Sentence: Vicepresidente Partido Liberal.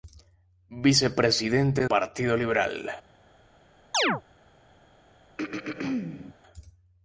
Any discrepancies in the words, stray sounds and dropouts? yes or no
yes